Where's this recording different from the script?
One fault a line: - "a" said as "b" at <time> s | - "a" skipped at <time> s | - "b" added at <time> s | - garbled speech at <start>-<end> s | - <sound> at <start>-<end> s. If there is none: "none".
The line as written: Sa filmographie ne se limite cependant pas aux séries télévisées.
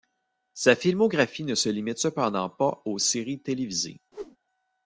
- whoosh at 4.1-4.4 s